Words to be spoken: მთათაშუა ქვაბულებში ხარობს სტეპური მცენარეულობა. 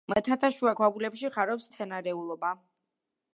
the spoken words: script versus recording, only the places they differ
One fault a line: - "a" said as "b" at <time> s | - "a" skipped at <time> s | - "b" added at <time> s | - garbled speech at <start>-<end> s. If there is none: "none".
- "სტეპური" skipped at 1.7 s